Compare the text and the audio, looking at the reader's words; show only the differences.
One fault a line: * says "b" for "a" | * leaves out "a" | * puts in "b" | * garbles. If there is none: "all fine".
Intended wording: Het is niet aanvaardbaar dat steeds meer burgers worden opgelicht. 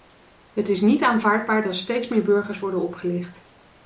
all fine